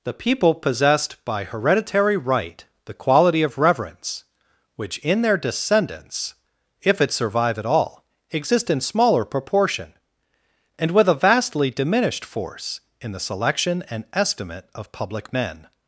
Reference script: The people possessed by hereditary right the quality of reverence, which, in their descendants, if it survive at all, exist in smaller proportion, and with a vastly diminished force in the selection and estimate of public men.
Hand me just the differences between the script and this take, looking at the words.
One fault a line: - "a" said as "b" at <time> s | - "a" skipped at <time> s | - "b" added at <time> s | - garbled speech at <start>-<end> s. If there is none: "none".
none